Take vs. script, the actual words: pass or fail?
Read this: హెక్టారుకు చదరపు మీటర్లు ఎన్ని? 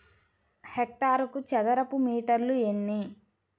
pass